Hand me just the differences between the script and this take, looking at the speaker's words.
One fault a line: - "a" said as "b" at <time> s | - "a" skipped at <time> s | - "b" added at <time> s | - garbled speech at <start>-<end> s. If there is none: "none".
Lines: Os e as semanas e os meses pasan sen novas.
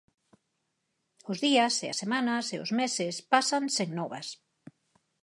- "días" added at 1.4 s